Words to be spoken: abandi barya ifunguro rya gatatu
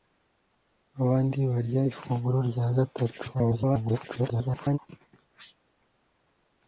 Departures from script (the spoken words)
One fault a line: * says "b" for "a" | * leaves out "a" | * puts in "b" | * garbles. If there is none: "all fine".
* garbles